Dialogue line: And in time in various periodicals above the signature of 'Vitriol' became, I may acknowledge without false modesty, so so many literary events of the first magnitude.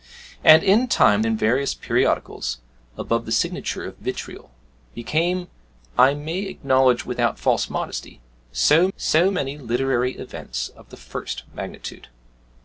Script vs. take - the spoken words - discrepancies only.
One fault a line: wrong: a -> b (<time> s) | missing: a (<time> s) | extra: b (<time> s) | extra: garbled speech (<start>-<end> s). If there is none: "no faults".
no faults